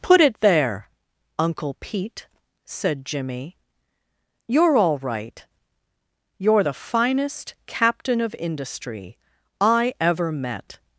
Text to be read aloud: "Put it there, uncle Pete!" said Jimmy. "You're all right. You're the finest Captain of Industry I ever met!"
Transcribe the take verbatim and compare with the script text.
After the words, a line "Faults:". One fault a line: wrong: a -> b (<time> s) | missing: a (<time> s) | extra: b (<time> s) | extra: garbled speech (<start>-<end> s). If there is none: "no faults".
"Put it there, uncle Pete!" said Jimmy. "You're all right. You're the finest Captain of Industry I ever met!"
Faults:
no faults